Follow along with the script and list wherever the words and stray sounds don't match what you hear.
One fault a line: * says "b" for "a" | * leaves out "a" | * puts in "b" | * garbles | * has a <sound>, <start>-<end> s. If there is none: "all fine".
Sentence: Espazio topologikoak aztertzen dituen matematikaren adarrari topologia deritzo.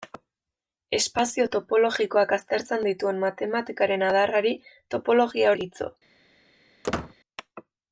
* has a squeak, 6.8-7.1 s